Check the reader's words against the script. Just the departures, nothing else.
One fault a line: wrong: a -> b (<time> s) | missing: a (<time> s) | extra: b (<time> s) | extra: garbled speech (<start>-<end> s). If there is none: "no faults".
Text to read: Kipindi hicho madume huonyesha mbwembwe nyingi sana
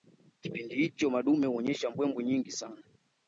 no faults